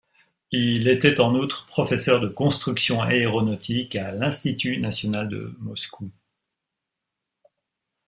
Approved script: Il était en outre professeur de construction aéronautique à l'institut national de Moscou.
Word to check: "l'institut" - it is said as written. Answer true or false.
true